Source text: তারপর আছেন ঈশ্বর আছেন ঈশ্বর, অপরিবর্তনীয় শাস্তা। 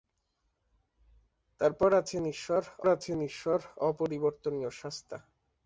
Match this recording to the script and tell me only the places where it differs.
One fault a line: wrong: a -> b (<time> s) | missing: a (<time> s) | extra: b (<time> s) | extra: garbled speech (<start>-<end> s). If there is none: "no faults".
no faults